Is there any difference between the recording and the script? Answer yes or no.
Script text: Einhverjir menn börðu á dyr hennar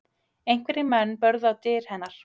no